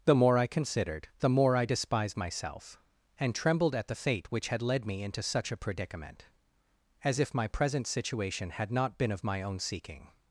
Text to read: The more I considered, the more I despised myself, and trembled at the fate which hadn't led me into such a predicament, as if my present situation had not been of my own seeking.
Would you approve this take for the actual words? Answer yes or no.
no